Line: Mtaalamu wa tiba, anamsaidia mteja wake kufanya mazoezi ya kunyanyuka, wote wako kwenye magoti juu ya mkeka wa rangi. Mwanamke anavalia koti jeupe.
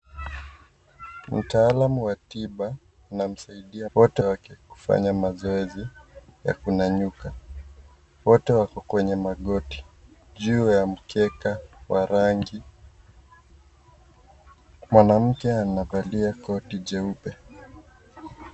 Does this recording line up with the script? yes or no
no